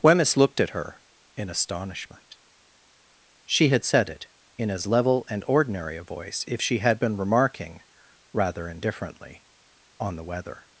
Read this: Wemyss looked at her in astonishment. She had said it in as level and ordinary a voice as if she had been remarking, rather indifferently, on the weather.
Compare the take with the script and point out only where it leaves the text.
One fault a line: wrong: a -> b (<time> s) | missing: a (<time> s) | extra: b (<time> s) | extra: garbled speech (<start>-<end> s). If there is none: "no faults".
missing: as (6.4 s)